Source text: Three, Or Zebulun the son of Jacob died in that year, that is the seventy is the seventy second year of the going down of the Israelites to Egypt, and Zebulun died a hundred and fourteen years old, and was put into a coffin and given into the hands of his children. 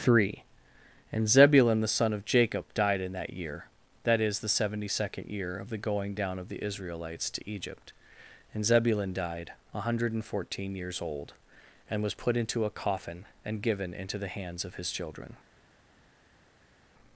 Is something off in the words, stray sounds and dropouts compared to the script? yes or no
yes